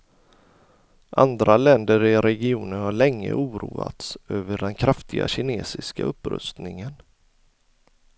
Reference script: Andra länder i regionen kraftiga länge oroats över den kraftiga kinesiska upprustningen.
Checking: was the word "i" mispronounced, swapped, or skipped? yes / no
no